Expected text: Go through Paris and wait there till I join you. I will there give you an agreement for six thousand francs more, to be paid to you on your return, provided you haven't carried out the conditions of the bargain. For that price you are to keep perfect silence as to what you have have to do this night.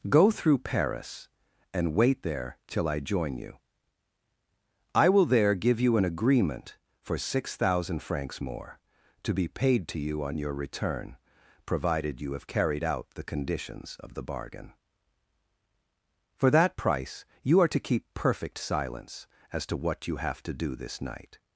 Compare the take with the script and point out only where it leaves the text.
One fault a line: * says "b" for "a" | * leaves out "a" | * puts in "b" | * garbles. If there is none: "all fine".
* says "have" for "haven't"
* leaves out "have"